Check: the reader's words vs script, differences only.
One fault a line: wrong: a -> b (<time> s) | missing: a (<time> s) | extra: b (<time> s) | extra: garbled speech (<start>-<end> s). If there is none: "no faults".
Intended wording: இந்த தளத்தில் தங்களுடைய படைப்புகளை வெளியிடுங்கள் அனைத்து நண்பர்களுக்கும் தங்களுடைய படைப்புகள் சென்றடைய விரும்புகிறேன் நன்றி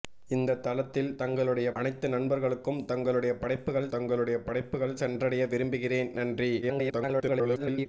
wrong: படைப்புகளை வெளியிடுங்கள் அனைத்து நண்பர்களுக்கும் -> அனைத்து நண்பர்களுக்கும் தங்களுடைய படைப்புகள் (1.7 s)
extra: garbled speech (6.6-7.9 s)